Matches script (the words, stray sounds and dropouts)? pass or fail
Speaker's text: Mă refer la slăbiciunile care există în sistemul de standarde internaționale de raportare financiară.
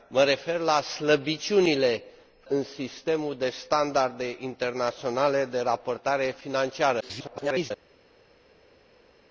fail